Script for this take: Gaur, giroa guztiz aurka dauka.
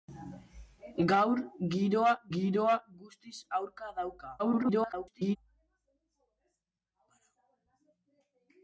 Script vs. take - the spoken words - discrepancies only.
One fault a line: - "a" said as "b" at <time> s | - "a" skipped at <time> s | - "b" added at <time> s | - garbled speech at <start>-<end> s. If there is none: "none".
- "giroa" added at 2.3 s
- garbled speech at 4.4-5.4 s